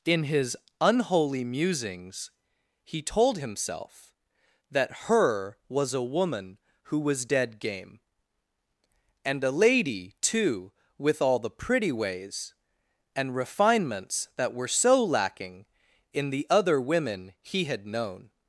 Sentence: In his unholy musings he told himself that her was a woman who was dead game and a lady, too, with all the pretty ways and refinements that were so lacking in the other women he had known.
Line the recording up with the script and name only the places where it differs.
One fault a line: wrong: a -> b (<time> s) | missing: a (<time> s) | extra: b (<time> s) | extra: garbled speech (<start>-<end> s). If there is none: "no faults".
no faults